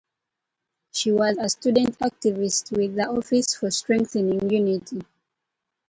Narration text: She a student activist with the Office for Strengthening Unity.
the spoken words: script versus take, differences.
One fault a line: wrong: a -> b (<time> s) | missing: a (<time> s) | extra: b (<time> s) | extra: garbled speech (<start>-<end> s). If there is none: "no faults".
extra: was (1.1 s)